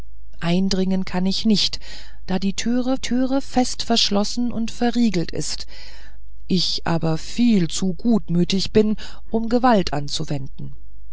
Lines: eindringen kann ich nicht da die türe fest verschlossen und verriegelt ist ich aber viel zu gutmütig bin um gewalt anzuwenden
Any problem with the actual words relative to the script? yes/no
yes